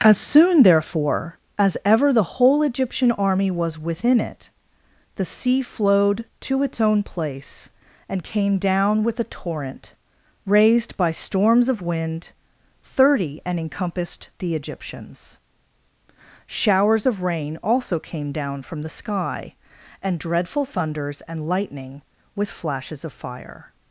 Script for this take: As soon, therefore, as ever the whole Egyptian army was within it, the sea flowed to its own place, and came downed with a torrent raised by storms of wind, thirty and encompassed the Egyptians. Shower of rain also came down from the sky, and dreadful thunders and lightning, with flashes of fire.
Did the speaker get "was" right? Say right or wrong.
right